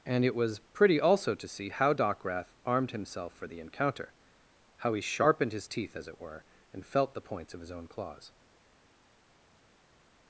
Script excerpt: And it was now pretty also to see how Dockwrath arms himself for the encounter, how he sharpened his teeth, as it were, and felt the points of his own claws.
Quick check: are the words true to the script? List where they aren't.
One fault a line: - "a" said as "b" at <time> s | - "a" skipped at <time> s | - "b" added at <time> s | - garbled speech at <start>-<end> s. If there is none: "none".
- "now" skipped at 0.6 s
- "arms" said as "armed" at 2.6 s